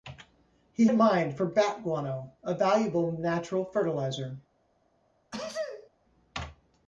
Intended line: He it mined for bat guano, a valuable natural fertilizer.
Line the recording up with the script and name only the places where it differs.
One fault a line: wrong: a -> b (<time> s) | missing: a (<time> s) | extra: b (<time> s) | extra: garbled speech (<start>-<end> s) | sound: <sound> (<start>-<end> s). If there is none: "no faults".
sound: sneeze (5.3-5.9 s)